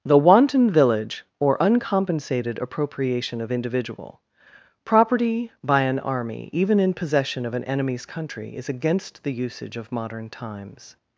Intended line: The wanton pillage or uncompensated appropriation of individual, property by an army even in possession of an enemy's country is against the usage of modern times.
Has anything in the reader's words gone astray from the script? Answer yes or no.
yes